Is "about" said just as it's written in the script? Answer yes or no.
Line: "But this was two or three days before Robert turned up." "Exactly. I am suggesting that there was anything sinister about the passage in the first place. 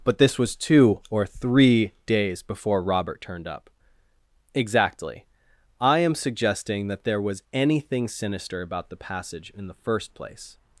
yes